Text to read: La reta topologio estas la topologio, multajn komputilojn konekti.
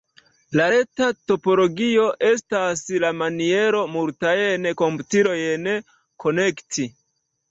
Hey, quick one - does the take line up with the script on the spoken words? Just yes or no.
no